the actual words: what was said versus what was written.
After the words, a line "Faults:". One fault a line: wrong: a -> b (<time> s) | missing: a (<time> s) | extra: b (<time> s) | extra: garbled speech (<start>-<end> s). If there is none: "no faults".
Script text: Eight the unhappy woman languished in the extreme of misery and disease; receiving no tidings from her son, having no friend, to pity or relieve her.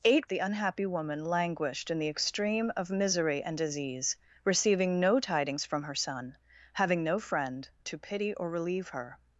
Eight the unhappy woman languished in the extreme of misery and disease; receiving no tidings from her son, having no friend, to pity or relieve her.
Faults:
no faults